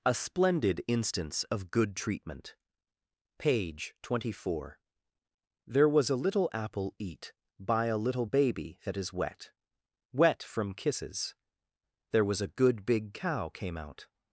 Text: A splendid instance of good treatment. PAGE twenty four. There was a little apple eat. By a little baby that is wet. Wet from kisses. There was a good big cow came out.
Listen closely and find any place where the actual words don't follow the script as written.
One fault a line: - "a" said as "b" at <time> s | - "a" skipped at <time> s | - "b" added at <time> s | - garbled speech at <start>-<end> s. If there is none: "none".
none